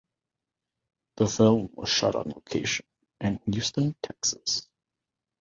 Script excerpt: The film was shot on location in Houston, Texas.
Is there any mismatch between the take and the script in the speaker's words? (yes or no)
no